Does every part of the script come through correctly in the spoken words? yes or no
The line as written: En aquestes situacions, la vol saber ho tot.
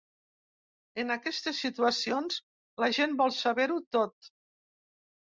no